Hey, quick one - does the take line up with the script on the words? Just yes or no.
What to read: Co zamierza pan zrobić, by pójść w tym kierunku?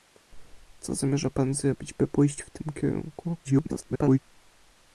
no